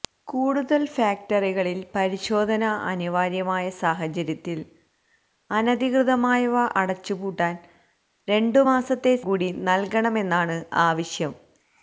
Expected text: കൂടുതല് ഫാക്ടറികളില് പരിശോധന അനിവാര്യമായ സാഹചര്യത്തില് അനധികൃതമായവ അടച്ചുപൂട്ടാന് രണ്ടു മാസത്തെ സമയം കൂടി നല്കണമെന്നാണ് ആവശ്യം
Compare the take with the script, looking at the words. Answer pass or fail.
fail